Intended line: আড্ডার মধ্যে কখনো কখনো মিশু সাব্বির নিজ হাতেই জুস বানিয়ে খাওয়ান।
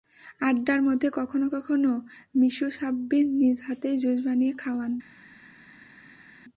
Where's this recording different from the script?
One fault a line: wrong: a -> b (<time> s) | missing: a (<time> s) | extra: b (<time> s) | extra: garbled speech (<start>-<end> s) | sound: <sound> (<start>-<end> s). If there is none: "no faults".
no faults